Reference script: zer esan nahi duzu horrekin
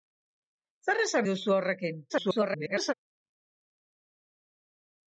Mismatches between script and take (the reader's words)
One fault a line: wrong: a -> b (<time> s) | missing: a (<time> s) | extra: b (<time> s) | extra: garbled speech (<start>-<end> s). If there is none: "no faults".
missing: nahi (1.3 s)
extra: garbled speech (2.1-2.9 s)